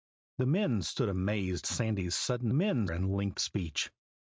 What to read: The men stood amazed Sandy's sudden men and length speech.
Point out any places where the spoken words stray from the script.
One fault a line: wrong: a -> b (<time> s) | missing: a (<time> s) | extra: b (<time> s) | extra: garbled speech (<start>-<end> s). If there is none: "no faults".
no faults